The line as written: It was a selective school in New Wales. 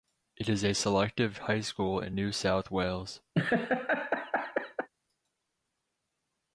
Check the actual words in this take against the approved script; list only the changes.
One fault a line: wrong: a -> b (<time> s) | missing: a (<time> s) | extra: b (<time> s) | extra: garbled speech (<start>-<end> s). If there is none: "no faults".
wrong: was -> is (0.5 s)
extra: high (1.4 s)
extra: South (2.3 s)